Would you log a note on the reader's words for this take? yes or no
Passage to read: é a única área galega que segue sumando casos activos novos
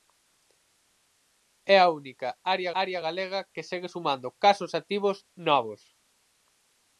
yes